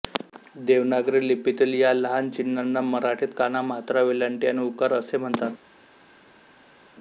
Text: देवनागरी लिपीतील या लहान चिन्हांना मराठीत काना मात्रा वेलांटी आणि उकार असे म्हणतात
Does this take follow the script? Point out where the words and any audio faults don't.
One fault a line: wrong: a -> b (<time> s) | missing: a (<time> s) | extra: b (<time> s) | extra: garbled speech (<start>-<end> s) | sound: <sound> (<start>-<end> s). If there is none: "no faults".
no faults